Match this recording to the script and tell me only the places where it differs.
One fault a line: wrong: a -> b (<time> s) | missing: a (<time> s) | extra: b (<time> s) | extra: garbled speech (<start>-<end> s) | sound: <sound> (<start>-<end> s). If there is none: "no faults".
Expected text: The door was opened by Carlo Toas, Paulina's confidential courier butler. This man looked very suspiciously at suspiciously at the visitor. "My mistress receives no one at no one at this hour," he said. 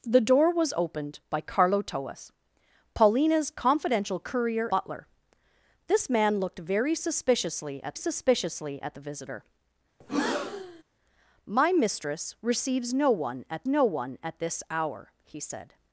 sound: breath (10.0-10.8 s)